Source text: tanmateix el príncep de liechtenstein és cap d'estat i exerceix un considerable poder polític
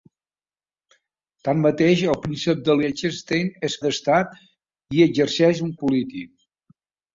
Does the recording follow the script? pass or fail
fail